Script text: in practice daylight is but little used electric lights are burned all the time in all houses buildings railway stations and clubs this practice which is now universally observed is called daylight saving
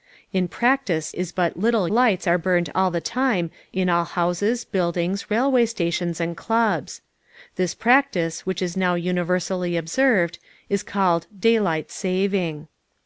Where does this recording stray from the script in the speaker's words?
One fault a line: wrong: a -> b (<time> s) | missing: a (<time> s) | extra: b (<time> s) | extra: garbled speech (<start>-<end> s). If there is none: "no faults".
missing: daylight (1.1 s)
missing: used electric (1.9 s)